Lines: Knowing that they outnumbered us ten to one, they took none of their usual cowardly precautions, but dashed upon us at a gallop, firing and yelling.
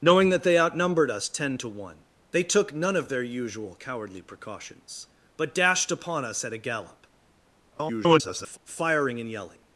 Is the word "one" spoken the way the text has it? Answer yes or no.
yes